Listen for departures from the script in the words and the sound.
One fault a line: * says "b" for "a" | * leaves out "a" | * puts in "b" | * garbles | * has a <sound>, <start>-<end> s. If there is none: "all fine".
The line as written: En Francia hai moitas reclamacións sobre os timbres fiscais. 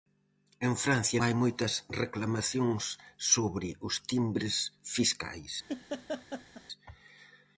* has a laugh, 5.7-6.6 s